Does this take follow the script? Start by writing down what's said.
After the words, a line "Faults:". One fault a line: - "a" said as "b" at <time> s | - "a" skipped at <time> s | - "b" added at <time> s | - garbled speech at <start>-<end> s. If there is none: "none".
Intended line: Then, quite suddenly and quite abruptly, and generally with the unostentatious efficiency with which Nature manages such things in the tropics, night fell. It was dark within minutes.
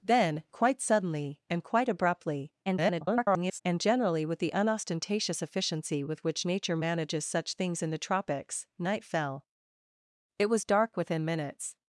Then, quite suddenly and quite abruptly, [garbled] and generally with the unostentatious efficiency with which Nature manages such things in the tropics, night fell. It was dark within minutes.
Faults:
- garbled speech at 2.6-3.6 s